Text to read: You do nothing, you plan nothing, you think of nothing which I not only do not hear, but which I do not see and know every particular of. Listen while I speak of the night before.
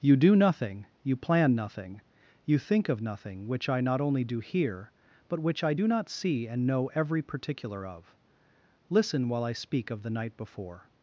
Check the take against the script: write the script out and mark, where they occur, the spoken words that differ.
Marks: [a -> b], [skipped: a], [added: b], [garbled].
You do nothing, you plan nothing, you think of nothing which I not only do [skipped: not] hear, but which I do not see and know every particular of. Listen while I speak of the night before.